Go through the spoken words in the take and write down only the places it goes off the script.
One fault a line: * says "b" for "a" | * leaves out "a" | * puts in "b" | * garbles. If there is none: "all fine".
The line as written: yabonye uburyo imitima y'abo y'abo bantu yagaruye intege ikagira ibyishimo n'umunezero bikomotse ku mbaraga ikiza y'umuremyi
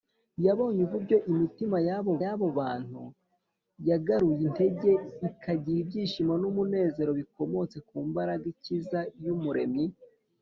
all fine